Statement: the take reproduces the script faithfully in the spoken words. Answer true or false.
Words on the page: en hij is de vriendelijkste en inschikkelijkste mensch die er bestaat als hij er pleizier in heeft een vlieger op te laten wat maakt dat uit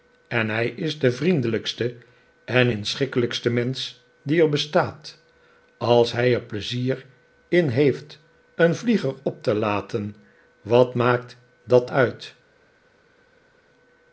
true